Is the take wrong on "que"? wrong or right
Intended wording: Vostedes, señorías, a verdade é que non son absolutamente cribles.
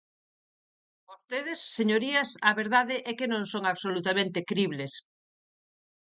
right